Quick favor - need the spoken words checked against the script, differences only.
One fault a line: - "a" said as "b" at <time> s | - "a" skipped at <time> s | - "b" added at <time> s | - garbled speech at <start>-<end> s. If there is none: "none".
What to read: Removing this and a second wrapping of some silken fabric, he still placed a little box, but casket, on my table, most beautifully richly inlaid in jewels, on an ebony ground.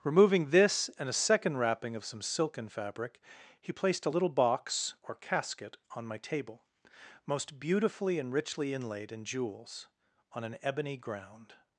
- "still" skipped at 3.7 s
- "but" said as "or" at 5.0 s
- "and" added at 8.2 s